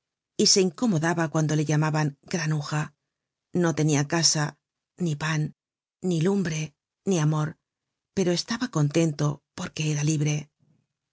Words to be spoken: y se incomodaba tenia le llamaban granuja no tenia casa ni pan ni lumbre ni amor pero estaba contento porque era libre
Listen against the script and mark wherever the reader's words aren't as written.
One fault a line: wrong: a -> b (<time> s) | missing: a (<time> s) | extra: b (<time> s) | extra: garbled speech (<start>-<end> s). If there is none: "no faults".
wrong: tenia -> cuando (1.3 s)